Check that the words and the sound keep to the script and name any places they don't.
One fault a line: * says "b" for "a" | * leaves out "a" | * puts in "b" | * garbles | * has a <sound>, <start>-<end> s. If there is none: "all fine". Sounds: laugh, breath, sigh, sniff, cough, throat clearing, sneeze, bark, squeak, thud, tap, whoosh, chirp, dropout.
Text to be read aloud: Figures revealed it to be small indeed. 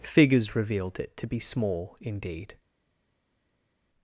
all fine